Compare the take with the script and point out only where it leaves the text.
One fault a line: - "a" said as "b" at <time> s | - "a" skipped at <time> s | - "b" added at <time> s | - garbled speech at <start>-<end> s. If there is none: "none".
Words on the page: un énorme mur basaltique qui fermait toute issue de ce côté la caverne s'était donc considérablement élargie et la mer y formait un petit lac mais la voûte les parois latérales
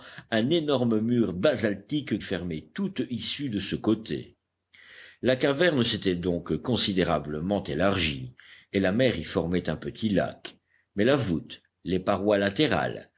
- "qui" skipped at 2.2 s